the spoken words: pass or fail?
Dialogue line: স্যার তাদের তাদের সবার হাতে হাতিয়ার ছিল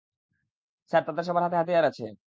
fail